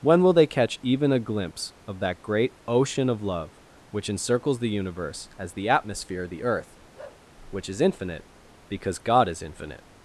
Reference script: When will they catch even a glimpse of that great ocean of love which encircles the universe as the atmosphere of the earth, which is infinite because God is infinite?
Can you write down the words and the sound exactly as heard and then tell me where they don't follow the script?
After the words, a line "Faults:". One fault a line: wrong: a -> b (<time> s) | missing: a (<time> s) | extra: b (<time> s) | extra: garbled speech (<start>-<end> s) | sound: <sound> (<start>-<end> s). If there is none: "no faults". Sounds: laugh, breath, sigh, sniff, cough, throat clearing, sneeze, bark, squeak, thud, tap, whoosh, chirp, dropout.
When will they catch even a glimpse of that great ocean of love which encircles the universe as the atmosphere of the earth, which is infinite because God is infinite?
Faults:
sound: bark (7.0-7.3 s)